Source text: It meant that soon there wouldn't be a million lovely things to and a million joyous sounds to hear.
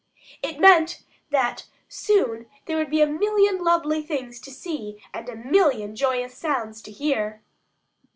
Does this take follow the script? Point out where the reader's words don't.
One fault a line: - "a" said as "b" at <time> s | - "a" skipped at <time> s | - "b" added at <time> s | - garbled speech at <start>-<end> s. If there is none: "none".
- "wouldn't" said as "would" at 2.8 s
- "see" added at 4.5 s